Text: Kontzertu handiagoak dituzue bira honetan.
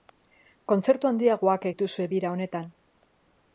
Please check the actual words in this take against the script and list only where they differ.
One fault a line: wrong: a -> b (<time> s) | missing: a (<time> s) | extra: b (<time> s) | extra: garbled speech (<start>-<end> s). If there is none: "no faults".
no faults